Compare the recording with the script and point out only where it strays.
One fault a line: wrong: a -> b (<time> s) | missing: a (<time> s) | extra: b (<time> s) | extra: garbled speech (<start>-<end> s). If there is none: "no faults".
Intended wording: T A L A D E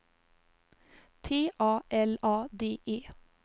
no faults